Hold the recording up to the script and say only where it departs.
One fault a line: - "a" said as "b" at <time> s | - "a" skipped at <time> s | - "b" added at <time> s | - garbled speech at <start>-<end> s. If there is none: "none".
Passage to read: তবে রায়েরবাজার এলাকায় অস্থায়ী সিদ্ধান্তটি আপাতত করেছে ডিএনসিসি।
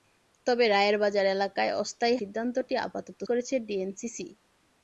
none